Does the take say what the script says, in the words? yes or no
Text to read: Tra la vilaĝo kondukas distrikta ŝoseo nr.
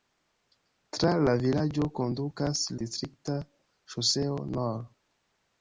yes